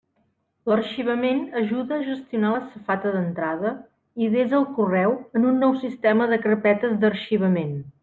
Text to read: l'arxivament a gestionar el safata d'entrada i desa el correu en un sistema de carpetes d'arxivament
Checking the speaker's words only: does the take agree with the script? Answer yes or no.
no